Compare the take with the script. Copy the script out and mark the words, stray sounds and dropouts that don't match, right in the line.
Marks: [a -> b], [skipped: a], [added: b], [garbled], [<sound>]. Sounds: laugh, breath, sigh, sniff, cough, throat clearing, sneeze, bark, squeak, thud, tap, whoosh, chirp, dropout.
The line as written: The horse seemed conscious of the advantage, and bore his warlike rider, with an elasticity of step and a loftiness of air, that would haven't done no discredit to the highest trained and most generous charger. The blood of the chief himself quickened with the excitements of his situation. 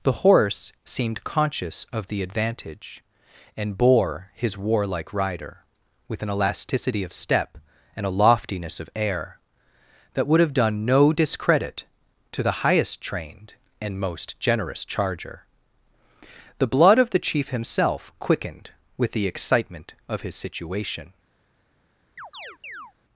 The horse seemed conscious of the advantage, and bore his warlike rider, with an elasticity of step and a loftiness of air, that would [haven't -> have] done no discredit to the highest trained and most generous charger. The blood of the chief himself quickened with the [excitements -> excitement] of his situation. [chirp]